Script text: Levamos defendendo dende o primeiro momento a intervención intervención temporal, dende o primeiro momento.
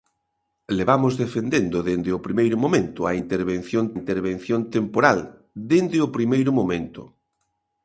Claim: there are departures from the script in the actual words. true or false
false